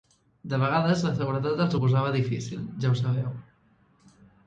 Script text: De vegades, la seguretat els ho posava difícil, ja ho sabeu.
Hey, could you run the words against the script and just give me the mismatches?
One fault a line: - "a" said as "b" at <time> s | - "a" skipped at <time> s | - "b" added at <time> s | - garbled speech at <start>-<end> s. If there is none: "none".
none